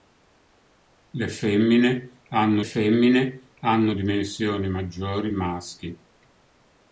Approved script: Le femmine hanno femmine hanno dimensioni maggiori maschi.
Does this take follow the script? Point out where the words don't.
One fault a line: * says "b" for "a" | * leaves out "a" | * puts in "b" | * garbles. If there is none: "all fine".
all fine